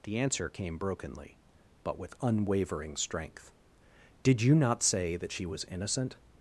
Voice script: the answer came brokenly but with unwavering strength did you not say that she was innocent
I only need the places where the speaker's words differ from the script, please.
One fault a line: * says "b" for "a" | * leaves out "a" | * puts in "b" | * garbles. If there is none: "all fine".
all fine